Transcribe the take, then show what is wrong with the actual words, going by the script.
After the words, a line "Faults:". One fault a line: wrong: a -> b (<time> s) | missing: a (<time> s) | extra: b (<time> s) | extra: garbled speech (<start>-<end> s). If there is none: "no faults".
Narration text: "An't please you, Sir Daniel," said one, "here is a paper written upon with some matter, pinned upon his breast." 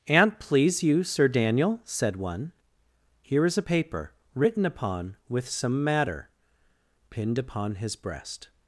"An't please you, Sir Daniel," said one, "here is a paper written upon with some matter, pinned upon his breast."
Faults:
no faults